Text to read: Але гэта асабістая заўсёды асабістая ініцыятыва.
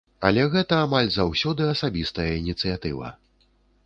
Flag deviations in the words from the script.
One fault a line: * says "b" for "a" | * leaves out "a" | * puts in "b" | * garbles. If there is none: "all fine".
* says "амаль" for "асабістая"